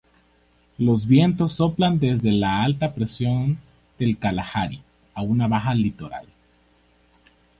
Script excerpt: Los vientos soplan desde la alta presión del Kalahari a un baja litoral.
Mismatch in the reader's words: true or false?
true